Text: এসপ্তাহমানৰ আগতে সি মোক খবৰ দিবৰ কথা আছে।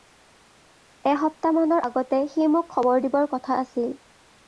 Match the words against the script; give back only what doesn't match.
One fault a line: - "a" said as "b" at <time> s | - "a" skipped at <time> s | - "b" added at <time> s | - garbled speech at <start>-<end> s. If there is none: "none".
- "আছে" said as "আছিল" at 3.6 s